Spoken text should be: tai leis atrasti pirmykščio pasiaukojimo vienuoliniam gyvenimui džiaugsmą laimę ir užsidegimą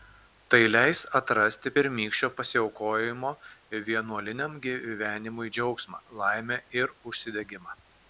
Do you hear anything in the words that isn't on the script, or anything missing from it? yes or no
no